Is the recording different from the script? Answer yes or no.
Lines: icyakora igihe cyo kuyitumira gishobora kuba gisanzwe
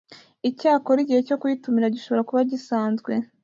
no